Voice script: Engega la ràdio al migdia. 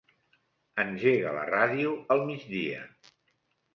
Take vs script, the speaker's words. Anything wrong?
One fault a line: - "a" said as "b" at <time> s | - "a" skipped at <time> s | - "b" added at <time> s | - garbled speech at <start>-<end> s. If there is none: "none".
none